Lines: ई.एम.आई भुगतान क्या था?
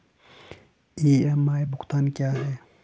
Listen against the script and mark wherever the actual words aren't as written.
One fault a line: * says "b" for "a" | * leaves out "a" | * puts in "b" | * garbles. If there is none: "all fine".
* says "है" for "था"